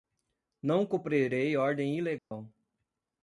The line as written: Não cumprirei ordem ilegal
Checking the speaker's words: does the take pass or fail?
pass